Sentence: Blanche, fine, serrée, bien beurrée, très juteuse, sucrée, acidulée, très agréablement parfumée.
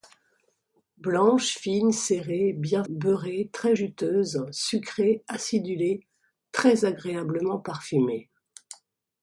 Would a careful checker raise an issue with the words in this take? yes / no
no